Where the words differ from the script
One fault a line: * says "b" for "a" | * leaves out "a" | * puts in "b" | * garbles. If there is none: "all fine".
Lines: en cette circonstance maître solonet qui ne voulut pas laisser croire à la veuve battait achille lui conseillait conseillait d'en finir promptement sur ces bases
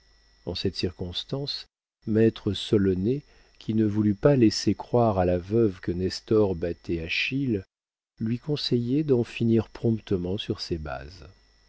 * puts in "que nestor"
* leaves out "conseillait"